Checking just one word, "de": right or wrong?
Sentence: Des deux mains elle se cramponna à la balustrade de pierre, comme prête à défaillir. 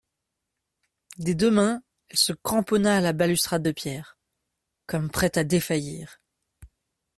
right